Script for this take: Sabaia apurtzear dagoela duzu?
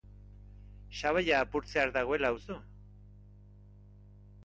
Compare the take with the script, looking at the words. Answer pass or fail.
pass